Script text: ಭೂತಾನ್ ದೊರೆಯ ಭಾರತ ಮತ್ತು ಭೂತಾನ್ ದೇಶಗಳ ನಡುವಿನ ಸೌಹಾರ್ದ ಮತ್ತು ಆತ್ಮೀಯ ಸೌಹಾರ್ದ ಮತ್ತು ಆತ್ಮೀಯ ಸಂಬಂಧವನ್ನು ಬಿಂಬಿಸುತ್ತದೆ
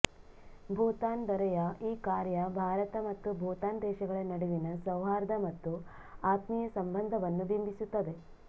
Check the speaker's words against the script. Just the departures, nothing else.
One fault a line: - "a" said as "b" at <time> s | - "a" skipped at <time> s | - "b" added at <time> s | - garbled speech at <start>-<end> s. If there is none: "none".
- "ಈ ಕಾರ್ಯ" added at 1.8 s
- "ಸೌಹಾರ್ದ ಮತ್ತು ಆತ್ಮೀಯ" skipped at 6.7 s